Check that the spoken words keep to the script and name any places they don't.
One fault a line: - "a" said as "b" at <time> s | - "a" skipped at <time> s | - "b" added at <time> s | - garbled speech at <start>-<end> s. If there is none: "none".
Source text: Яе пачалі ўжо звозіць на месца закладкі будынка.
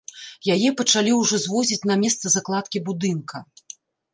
none